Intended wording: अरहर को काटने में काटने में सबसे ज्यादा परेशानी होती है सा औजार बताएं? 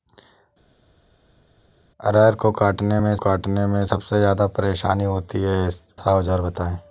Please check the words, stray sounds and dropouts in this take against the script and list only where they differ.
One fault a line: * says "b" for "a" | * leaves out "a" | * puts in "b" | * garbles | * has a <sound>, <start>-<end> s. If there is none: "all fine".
all fine